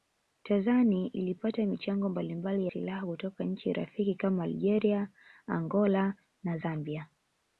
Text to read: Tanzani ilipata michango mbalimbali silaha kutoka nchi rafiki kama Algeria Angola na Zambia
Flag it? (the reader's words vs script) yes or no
no